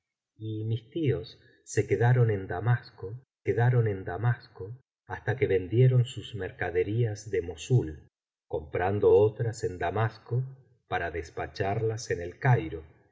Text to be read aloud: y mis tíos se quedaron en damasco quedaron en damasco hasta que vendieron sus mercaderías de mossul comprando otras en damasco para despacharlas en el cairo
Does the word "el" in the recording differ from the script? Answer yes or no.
no